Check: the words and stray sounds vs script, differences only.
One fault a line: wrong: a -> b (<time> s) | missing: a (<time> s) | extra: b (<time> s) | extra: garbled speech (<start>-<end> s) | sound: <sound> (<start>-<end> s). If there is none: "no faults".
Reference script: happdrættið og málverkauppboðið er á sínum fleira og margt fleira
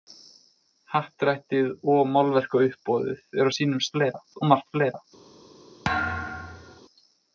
sound: thud (5.8-6.8 s)